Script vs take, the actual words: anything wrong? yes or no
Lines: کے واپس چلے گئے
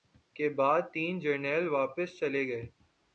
yes